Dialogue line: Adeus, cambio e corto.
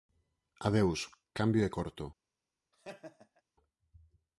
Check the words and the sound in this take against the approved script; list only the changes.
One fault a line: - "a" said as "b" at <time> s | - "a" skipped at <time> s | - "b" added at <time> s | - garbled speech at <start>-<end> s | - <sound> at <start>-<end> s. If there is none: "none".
- laugh at 2.7-3.4 s